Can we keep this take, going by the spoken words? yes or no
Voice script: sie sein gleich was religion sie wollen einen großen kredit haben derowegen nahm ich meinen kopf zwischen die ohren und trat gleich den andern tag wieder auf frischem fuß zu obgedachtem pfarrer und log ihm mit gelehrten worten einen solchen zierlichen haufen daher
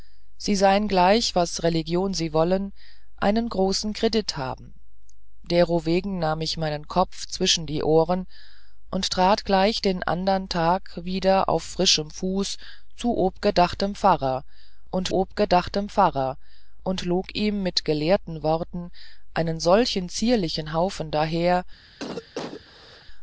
no